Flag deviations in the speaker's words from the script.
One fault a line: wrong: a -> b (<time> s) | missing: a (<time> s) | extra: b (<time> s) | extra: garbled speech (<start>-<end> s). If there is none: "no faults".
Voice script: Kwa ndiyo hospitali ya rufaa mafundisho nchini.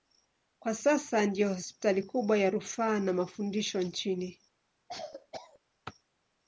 extra: sasa (0.8 s)
extra: kubwa (2.0 s)
extra: na (3.0 s)